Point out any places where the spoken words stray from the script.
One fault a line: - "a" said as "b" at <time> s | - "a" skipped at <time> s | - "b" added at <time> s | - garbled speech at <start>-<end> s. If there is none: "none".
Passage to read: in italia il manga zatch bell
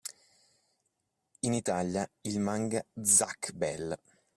none